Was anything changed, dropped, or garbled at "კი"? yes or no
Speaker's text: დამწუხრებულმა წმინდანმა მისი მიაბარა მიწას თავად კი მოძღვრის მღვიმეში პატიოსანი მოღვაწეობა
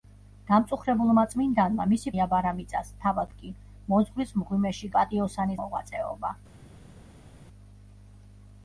no